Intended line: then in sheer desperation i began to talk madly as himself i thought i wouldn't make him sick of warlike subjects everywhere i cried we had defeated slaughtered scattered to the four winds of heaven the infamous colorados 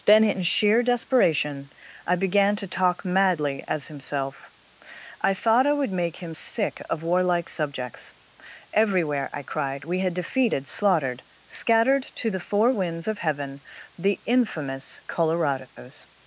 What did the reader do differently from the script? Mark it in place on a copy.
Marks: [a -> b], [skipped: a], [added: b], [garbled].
then in sheer desperation i began to talk madly as himself i thought i [wouldn't -> would] make him sick of warlike subjects everywhere i cried we had defeated slaughtered scattered to the four winds of heaven the infamous colorados